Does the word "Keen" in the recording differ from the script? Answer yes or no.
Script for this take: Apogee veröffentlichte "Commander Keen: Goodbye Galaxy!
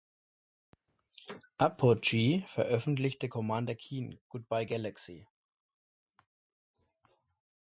no